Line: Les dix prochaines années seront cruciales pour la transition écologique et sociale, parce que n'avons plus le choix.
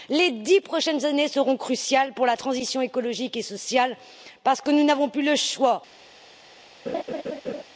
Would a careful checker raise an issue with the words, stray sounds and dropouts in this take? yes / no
yes